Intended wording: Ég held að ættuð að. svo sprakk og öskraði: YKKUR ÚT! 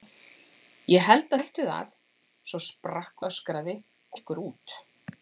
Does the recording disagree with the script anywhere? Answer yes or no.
no